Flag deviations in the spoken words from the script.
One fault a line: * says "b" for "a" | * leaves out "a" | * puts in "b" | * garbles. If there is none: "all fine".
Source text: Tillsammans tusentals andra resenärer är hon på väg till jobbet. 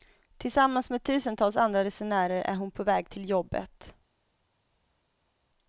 * puts in "med"